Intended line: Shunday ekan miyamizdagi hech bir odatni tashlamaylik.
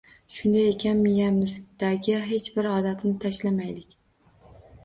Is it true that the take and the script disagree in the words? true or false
false